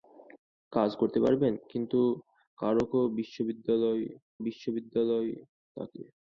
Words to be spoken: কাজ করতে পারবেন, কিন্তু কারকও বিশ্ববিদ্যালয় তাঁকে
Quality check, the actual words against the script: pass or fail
fail